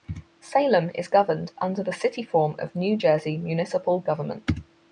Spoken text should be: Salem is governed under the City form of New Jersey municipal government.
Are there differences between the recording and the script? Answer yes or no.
no